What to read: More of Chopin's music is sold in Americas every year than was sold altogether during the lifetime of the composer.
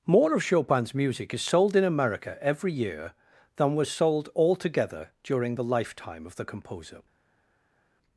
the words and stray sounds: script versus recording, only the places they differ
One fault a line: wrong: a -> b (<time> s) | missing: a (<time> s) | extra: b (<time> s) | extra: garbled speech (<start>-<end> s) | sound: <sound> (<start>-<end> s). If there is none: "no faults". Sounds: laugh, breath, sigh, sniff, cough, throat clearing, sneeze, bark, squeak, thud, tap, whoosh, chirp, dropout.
wrong: Americas -> America (1.8 s)